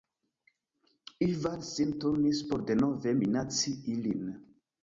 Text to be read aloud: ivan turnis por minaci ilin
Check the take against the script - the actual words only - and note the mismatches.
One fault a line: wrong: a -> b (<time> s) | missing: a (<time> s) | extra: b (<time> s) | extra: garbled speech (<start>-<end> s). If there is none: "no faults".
extra: sin (1.7 s)
extra: denove (2.7 s)